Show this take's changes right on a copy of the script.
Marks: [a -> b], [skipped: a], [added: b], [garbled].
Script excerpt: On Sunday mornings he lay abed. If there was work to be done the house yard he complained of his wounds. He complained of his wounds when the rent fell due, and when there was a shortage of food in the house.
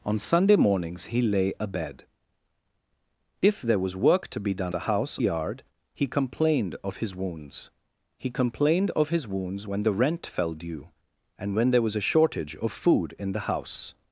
On Sunday mornings he lay abed. If there was work to be done the house yard he complained of his wounds. He complained of his wounds when the rent fell due, and when there was a shortage of food in the house.